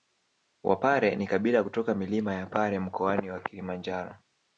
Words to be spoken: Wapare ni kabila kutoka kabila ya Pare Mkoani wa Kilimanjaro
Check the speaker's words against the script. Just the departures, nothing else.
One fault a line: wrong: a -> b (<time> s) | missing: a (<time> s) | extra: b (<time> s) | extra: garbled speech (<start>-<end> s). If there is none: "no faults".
wrong: kabila -> milima (1.9 s)